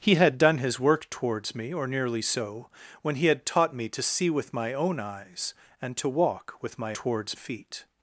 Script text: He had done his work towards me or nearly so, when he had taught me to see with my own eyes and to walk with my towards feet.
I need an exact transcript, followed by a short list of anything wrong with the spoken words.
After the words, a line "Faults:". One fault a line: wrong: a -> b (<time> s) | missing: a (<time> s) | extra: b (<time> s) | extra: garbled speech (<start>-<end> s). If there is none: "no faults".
He had done his work towards me or nearly so, when he had taught me to see with my own eyes and to walk with my towards feet.
Faults:
no faults